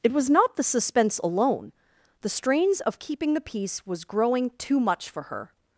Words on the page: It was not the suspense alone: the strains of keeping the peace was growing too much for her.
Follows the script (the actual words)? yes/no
yes